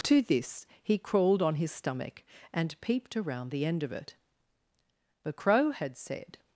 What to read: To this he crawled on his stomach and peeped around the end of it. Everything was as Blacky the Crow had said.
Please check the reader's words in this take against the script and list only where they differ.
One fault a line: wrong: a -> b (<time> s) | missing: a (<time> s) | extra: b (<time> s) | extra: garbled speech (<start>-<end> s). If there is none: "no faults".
missing: Everything was as Blacky (4.2 s)